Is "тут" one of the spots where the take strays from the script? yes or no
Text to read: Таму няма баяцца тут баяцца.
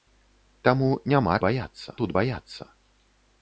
no